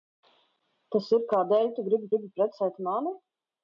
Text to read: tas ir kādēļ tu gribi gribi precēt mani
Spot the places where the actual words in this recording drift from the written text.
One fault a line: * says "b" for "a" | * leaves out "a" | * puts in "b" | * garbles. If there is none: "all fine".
all fine